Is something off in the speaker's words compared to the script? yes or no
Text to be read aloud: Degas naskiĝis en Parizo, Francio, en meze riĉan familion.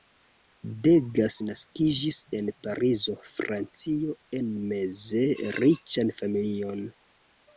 no